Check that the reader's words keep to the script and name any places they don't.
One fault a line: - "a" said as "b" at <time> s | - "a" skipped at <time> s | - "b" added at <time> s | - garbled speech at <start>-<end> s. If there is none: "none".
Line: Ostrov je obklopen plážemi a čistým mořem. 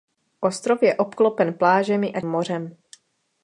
- "čistým" skipped at 2.2 s